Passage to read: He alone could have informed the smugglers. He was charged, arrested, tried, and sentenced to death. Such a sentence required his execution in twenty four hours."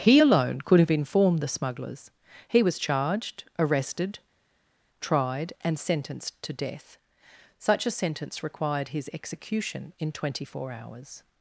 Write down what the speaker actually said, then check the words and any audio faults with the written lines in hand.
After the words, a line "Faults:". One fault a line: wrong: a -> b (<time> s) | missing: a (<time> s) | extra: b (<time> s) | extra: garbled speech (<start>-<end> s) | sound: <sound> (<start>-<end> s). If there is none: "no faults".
He alone could have informed the smugglers. He was charged, arrested, tried, and sentenced to death. Such a sentence required his execution in twenty four hours."
Faults:
no faults